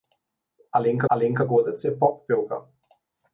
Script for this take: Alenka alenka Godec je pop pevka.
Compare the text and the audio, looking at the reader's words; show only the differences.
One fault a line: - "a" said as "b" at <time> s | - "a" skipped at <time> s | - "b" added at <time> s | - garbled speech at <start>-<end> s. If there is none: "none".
none